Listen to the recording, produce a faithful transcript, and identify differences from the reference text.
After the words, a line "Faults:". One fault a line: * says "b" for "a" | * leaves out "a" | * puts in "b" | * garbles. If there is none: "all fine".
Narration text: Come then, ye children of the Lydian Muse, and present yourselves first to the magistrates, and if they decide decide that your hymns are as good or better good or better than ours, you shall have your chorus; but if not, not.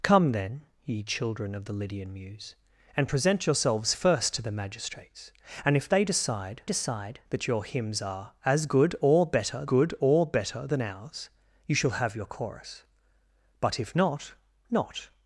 Come then, ye children of the Lydian Muse, and present yourselves first to the magistrates, and if they decide decide that your hymns are as good or better good or better than ours, you shall have your chorus; but if not, not.
Faults:
all fine